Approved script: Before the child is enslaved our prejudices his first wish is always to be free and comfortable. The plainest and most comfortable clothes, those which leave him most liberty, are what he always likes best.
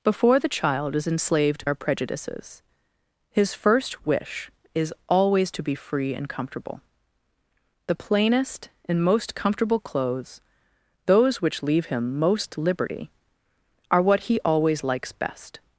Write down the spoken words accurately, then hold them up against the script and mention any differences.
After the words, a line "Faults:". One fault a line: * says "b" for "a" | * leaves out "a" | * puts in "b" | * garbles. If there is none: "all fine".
Before the child is enslaved our prejudices his first wish is always to be free and comfortable. The plainest and most comfortable clothes, those which leave him most liberty, are what he always likes best.
Faults:
all fine